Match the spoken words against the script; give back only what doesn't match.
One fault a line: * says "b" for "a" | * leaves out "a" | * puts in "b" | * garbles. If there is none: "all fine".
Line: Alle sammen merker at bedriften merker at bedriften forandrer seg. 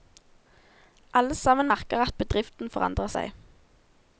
* leaves out "merker at bedriften"